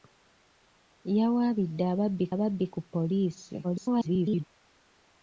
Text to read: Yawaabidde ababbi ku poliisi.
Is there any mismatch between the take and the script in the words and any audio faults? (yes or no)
yes